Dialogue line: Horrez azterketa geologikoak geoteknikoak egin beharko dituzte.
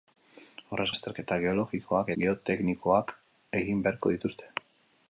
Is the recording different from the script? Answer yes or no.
no